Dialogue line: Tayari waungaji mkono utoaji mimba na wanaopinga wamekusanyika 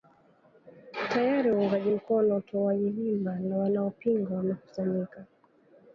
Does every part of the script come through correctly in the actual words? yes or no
yes